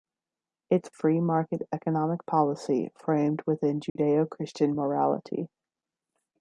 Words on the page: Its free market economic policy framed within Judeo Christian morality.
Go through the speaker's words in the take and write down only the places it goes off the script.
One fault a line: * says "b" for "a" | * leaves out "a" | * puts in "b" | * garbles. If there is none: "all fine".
all fine